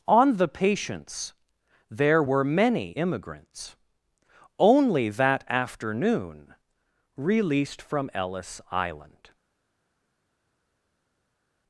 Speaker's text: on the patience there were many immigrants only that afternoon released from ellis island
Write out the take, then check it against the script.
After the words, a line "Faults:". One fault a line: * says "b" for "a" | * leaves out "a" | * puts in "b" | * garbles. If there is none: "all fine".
on the patience there were many immigrants only that afternoon released from ellis island
Faults:
all fine